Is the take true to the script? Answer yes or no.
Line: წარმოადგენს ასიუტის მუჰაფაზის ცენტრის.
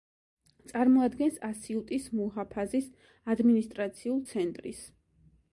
no